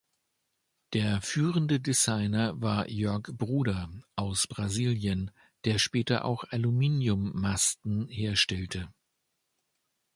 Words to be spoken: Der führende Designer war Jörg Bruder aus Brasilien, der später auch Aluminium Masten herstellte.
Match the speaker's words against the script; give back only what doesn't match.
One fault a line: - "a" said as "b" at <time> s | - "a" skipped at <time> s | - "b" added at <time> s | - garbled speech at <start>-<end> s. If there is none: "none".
none